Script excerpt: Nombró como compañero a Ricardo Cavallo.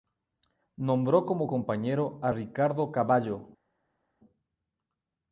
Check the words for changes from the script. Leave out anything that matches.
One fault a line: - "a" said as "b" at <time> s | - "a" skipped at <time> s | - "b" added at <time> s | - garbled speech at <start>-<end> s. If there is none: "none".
none